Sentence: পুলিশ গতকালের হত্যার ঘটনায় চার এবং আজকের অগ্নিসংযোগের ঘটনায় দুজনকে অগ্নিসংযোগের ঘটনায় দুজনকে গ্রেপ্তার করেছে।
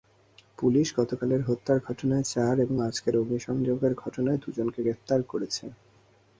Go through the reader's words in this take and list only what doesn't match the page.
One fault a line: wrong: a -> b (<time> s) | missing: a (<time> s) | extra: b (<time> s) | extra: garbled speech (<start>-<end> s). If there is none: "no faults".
missing: অগ্নিসংযোগের ঘটনায় দুজনকে (4.8 s)